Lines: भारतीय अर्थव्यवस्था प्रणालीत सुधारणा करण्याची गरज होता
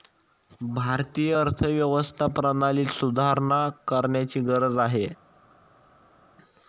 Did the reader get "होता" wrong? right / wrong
wrong